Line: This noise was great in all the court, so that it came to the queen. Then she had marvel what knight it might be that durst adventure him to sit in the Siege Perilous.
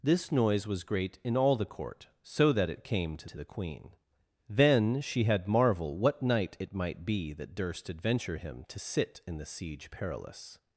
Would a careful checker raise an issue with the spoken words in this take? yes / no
yes